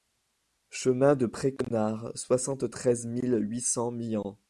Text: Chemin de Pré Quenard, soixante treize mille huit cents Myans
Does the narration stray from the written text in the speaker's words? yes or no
no